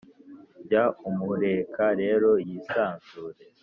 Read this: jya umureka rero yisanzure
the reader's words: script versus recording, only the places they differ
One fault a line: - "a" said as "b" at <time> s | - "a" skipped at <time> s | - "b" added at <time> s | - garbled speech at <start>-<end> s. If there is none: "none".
none